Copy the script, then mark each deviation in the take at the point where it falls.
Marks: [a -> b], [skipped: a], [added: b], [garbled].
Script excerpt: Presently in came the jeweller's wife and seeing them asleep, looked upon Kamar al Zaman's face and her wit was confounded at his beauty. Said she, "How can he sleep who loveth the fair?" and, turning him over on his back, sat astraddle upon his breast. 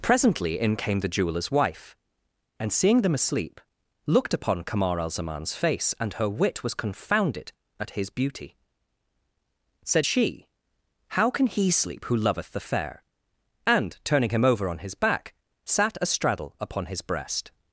Presently in came the jeweller's wife and seeing them asleep, looked upon Kamar al Zaman's face and her wit was confounded at his beauty. Said she, "How can he sleep who loveth the fair?" and, turning him over on his back, sat astraddle upon his breast.